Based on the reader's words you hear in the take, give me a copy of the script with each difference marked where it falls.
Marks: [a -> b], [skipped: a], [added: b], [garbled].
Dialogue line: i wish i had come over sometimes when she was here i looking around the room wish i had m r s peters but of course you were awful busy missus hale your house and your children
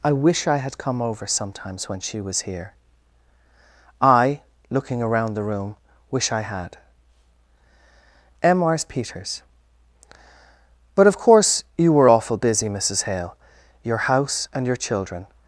i wish i had come over sometimes when she was here i looking around the room wish i had m r s peters but of course you were awful busy missus hale your house and your children